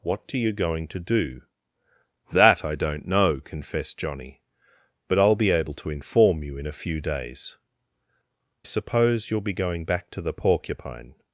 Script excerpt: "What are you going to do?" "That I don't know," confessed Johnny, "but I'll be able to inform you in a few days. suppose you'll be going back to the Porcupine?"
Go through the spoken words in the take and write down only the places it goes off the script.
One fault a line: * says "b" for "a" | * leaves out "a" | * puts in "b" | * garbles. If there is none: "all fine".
all fine